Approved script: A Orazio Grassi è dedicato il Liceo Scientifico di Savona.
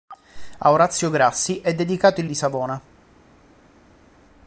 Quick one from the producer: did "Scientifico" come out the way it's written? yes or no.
no